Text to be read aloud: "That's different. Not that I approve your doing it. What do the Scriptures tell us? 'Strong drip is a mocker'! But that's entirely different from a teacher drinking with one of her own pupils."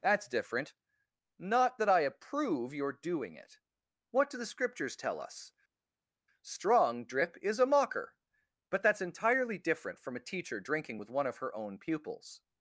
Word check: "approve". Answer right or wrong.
right